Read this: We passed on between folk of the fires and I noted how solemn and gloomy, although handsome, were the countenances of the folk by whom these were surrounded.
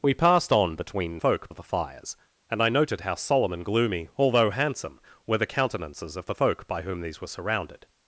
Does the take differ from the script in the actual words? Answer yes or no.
no